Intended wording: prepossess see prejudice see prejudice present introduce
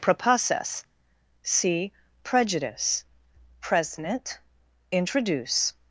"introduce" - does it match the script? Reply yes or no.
yes